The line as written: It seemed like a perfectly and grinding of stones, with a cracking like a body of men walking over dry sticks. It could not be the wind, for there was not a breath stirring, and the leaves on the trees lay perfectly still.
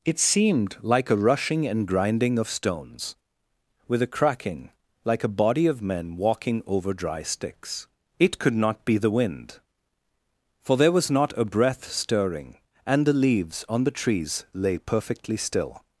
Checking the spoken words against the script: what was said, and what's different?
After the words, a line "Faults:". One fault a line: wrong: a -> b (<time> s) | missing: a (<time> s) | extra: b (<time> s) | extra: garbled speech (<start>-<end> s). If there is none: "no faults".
It seemed like a rushing and grinding of stones, with a cracking like a body of men walking over dry sticks. It could not be the wind, for there was not a breath stirring, and the leaves on the trees lay perfectly still.
Faults:
wrong: perfectly -> rushing (1.1 s)